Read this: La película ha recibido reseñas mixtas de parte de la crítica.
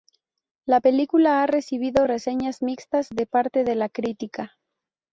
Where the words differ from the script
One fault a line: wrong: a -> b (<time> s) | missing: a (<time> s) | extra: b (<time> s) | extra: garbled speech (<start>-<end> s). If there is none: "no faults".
no faults